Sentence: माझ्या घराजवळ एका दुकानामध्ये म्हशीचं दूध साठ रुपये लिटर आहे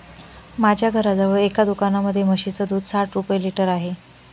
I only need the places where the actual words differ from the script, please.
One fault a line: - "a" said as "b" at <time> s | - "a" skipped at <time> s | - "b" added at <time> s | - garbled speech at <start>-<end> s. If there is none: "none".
none